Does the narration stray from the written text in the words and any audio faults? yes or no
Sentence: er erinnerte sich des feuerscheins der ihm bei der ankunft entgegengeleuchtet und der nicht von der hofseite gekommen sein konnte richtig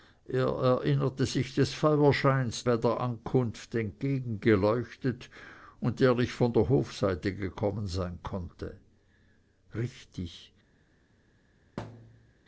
yes